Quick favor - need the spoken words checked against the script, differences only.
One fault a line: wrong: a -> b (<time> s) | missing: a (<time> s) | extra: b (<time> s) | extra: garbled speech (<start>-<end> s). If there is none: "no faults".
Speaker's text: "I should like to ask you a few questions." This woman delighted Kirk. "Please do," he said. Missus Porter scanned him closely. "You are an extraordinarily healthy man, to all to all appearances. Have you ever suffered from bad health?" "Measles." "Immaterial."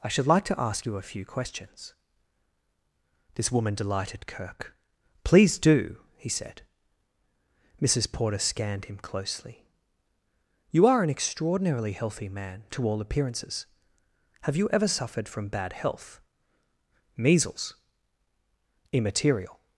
missing: to all (13.0 s)